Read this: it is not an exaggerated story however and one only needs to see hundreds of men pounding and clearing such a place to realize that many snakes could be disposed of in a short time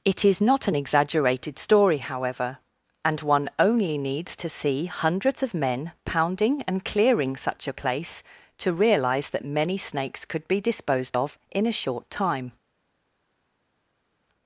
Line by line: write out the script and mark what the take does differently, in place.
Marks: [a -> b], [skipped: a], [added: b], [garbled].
it is not an exaggerated story however and one only needs to see hundreds of men pounding and clearing such a place to realize that many snakes could be disposed of in a short time